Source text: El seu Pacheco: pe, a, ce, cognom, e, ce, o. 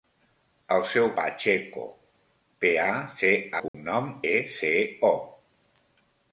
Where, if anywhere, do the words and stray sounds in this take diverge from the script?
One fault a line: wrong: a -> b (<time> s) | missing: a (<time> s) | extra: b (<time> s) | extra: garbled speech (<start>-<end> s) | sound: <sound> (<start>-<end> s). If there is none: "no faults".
sound: dropout (3.7-3.7 s)